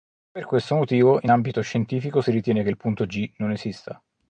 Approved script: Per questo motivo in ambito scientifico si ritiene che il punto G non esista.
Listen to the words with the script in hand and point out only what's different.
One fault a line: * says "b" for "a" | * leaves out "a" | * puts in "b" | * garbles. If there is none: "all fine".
all fine